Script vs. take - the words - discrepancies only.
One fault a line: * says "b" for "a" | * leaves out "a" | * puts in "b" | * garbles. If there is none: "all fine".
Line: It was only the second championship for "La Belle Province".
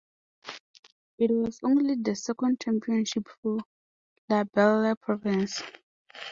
all fine